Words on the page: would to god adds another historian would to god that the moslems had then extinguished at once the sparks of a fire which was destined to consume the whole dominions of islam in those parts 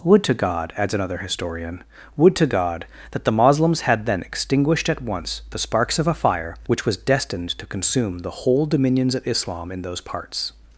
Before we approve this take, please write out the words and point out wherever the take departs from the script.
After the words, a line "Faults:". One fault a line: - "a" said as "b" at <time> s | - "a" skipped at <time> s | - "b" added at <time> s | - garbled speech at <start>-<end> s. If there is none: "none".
would to god adds another historian would to god that the moslems had then extinguished at once the sparks of a fire which was destined to consume the whole dominions of islam in those parts
Faults:
none